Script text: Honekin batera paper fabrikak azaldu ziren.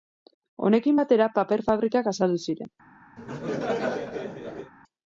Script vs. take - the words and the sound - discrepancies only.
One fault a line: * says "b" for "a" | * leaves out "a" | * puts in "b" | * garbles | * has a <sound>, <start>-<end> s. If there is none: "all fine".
* has a laugh, 3.2-4.7 s